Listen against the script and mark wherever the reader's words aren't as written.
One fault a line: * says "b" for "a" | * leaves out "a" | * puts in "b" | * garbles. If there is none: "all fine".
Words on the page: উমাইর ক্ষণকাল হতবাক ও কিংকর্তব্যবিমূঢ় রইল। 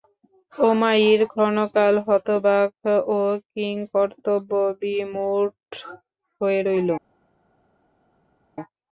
* puts in "হয়ে"